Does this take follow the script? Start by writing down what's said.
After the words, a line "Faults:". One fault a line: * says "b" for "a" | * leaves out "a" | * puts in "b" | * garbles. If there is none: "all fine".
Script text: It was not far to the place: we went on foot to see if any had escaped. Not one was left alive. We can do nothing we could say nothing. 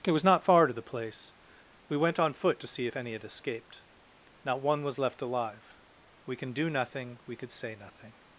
It was not far to the place: we went on foot to see if any had escaped. Not one was left alive. We can do nothing we could say nothing.
Faults:
all fine